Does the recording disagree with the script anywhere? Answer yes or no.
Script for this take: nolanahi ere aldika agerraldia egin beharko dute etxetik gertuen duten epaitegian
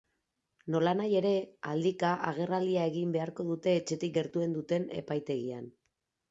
no